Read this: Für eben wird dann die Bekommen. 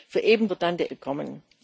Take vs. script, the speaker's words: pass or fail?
pass